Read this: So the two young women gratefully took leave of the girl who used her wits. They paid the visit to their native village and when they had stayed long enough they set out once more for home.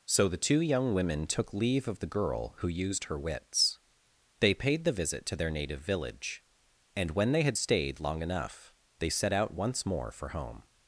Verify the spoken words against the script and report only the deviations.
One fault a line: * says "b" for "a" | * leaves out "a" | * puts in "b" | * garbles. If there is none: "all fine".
* leaves out "gratefully"